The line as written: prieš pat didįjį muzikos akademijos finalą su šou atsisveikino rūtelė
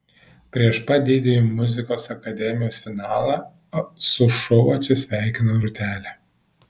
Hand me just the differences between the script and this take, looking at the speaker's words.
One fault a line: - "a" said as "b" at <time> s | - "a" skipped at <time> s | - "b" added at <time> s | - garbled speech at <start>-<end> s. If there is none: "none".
none